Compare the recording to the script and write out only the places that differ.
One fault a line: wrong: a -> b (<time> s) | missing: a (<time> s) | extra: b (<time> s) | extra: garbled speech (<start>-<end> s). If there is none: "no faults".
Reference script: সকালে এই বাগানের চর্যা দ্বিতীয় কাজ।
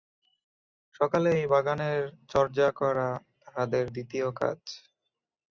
extra: করা তাহাদের (2.8 s)